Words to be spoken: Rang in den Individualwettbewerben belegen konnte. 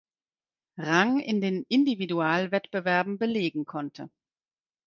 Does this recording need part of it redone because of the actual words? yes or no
no